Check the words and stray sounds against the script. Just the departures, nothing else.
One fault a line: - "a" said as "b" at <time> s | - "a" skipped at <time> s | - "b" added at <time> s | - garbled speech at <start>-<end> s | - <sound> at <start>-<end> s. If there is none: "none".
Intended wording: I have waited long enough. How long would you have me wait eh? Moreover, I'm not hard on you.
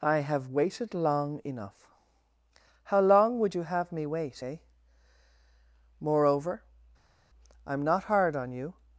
none